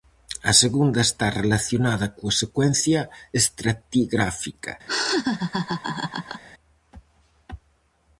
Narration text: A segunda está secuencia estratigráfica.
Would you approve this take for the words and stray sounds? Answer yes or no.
no